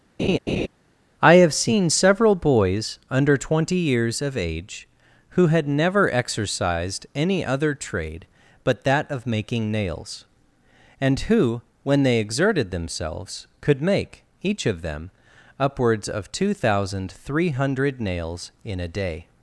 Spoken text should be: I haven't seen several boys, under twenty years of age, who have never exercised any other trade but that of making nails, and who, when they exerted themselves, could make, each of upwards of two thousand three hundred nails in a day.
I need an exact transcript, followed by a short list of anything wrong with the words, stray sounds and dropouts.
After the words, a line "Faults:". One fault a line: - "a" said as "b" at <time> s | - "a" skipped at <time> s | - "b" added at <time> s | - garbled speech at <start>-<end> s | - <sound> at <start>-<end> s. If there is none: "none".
I have seen several boys, under twenty years of age, who had never exercised any other trade but that of making nails, and who, when they exerted themselves, could make, each of them, upwards of two thousand three hundred nails in a day.
Faults:
- laugh at 0.2-0.7 s
- "haven't" said as "have" at 1.3 s
- "have" said as "had" at 5.5 s
- "them" added at 14.8 s